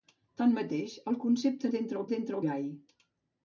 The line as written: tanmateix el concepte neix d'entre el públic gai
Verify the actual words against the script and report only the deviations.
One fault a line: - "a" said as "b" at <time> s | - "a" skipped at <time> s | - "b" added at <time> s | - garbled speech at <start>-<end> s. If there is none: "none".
- "neix" skipped at 1.7 s
- "públic" said as "d'entre" at 2.1 s